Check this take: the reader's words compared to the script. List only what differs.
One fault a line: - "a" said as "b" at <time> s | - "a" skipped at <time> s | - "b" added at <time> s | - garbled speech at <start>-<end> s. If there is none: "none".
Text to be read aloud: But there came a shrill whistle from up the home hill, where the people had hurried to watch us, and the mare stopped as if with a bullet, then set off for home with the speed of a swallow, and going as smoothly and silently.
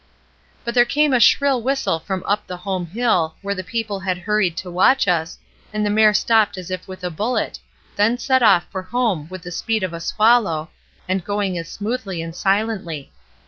none